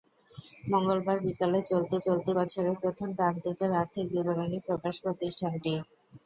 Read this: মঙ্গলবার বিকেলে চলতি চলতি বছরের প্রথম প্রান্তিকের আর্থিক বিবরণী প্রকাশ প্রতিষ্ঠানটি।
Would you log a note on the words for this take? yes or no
no